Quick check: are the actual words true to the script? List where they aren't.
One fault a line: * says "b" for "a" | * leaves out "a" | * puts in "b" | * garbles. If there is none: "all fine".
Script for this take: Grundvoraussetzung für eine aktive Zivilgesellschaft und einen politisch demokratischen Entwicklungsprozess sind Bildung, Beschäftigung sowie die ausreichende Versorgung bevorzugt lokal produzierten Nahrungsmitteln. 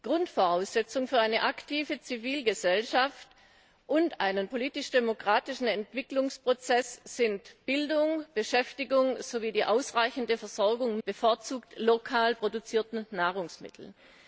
all fine